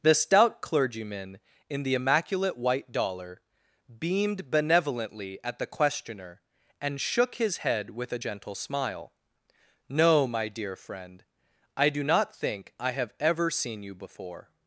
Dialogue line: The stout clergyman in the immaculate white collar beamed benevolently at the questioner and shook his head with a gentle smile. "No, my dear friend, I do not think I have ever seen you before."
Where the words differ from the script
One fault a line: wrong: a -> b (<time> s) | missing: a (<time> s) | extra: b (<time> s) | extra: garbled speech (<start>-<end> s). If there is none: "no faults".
wrong: collar -> dollar (2.9 s)